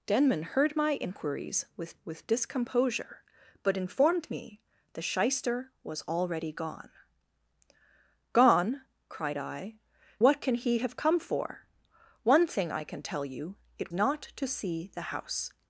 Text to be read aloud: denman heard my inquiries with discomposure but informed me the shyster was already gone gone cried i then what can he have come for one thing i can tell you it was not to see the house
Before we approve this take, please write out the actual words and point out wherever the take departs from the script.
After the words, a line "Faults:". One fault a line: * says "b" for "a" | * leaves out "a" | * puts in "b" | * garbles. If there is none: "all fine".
denman heard my inquiries with with discomposure but informed me the shyster was already gone gone cried i what can he have come for one thing i can tell you it not to see the house
Faults:
* puts in "with"
* leaves out "then"
* leaves out "was"